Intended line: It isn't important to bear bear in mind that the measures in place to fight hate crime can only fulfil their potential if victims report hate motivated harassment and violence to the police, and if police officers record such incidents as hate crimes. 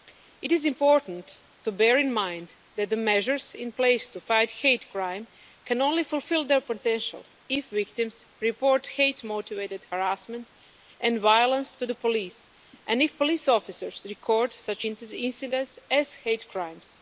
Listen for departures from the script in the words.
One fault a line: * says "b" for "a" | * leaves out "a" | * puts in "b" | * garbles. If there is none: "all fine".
* says "is" for "isn't"
* leaves out "bear"